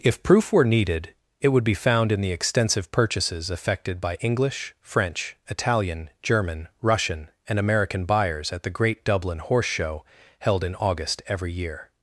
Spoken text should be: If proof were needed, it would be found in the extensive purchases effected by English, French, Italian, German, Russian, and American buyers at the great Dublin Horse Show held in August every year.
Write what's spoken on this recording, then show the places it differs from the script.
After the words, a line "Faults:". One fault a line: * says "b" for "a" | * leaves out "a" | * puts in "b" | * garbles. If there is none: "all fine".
If proof were needed, it would be found in the extensive purchases effected by English, French, Italian, German, Russian, and American buyers at the great Dublin Horse Show held in August every year.
Faults:
all fine